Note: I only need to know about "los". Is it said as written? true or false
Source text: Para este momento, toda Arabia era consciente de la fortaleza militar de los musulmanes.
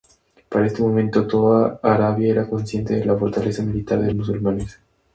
false